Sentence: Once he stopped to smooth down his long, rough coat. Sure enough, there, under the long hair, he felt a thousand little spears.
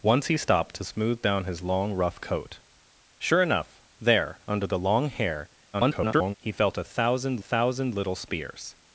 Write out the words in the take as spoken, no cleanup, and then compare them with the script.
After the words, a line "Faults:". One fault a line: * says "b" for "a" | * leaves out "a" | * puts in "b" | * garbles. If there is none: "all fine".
Once he stopped to smooth down his long, rough coat. Sure enough, there, under the long hair, [garbled] he felt a thousand thousand little spears.
Faults:
* garbles
* puts in "thousand"